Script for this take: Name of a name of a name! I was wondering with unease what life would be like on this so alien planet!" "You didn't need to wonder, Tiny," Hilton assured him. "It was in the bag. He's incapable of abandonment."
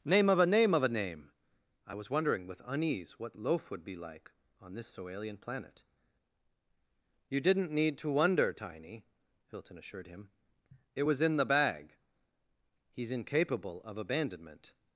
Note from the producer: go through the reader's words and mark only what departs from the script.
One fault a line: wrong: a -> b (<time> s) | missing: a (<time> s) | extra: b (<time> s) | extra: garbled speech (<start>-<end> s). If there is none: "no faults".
wrong: life -> loaf (3.4 s)